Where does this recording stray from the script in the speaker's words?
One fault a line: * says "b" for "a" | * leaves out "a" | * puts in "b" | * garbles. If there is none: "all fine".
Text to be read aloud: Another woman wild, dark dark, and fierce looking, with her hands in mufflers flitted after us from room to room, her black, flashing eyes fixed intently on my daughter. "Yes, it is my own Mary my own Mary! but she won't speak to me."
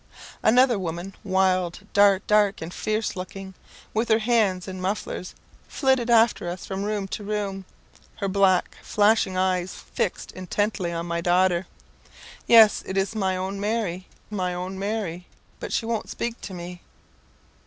all fine